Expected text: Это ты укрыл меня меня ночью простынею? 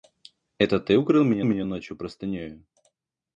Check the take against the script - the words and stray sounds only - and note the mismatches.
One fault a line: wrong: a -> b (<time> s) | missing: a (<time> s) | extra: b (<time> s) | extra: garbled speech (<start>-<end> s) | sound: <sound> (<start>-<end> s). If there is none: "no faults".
no faults